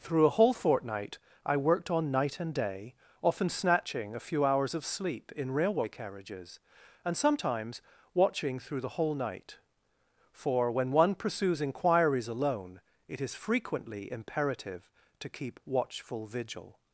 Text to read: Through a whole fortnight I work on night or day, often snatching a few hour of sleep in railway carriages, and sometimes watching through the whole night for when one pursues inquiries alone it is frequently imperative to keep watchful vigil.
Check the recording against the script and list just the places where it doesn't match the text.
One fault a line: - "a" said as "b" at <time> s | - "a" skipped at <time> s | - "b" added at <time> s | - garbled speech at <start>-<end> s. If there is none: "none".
- "work" said as "worked" at 1.6 s
- "or" said as "and" at 2.4 s
- "hour" said as "hours" at 4.5 s